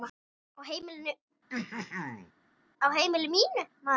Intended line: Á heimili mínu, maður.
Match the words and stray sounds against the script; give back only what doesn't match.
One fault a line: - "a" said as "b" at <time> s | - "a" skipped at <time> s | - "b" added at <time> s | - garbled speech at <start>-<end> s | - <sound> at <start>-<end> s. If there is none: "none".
- throat clearing at 1.5-2.3 s